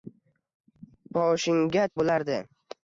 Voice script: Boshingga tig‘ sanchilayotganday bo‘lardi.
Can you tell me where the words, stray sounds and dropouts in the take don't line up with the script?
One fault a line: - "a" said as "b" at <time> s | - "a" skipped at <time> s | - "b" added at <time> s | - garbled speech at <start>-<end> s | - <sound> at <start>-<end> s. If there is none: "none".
- "tig sanchilayotganday" skipped at 1.9 s